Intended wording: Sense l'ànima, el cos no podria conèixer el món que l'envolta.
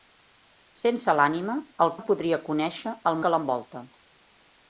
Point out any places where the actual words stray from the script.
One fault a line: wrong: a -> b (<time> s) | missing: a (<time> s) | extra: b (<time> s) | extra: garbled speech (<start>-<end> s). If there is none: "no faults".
missing: cos (1.9 s)
missing: món (3.2 s)